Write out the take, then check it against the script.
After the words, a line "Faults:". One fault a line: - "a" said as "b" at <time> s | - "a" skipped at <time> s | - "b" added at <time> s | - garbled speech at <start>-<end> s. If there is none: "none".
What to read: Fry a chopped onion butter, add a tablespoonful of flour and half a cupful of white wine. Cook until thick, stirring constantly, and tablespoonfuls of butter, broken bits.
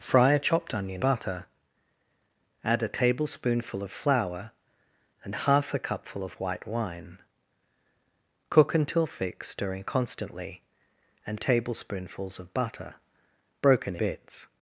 Fry a chopped onion butter, add a tablespoonful of flour and half a cupful of white wine. Cook until thick, stirring constantly, and tablespoonfuls of butter, broken bits.
Faults:
none